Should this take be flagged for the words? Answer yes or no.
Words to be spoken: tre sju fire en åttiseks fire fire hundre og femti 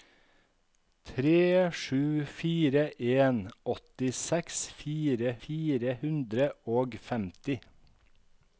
no